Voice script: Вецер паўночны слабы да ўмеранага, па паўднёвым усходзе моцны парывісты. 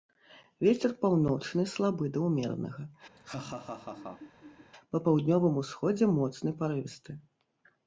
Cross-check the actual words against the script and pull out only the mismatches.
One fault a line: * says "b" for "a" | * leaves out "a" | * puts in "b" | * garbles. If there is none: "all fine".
all fine